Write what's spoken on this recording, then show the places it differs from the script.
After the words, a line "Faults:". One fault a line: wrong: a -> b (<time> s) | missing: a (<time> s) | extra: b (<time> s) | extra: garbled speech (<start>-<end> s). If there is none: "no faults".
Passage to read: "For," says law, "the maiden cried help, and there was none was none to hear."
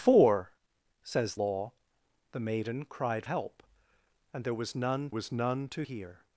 "For," says law, "the maiden cried help, and there was none was none to hear."
Faults:
no faults